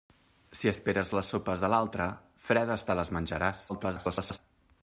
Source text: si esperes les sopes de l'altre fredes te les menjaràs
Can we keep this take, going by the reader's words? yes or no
no